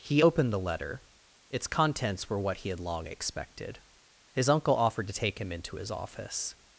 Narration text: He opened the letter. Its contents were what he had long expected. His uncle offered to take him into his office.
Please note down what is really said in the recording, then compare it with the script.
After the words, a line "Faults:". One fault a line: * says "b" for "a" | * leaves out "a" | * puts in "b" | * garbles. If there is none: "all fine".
He opened the letter. Its contents were what he had long expected. His uncle offered to take him into his office.
Faults:
all fine